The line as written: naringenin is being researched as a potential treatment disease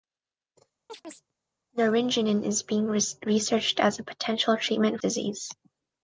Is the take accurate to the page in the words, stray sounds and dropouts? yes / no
no